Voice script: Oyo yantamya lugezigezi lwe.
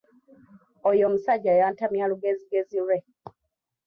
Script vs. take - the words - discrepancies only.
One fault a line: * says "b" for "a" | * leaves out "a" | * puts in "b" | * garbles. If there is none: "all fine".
* puts in "omusajja"